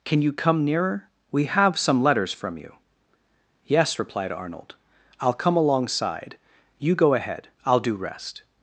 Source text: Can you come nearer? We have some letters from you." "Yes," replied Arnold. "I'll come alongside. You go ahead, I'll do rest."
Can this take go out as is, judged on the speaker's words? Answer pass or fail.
pass